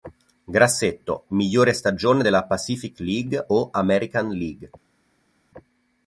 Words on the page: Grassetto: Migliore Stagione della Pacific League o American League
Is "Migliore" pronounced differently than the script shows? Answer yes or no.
no